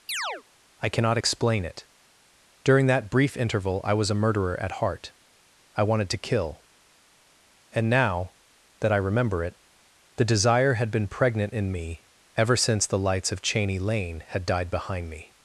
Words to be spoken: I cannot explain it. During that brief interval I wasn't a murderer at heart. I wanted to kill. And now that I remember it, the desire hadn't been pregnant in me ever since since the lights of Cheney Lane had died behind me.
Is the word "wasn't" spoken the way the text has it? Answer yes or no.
no